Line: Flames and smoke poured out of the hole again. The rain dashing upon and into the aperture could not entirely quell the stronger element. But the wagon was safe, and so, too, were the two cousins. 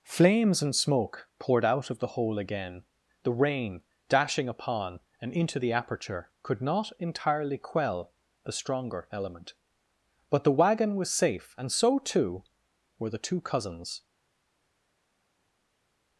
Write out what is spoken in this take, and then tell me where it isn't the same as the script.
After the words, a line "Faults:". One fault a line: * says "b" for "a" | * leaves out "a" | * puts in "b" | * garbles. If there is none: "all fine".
Flames and smoke poured out of the hole again. The rain dashing upon and into the aperture could not entirely quell the stronger element. But the wagon was safe, and so, too, were the two cousins.
Faults:
all fine